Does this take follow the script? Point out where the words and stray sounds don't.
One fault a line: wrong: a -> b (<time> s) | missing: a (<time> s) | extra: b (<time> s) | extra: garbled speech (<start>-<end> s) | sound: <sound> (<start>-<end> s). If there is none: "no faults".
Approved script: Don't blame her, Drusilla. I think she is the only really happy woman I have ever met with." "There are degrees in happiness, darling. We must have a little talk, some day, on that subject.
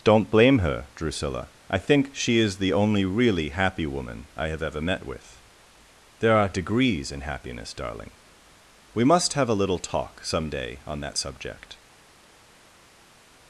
no faults